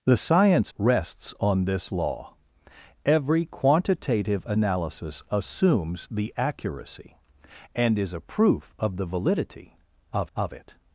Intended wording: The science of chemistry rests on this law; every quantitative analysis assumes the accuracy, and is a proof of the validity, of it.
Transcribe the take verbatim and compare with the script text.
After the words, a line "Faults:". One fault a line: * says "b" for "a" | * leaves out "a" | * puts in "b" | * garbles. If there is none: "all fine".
The science rests on this law; every quantitative analysis assumes the accuracy, and is a proof of the validity, of of it.
Faults:
* leaves out "of chemistry"
* puts in "of"